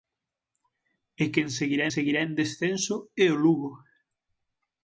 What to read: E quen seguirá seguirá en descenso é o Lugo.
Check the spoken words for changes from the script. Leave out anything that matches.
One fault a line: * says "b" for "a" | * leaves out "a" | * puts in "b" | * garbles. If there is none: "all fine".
all fine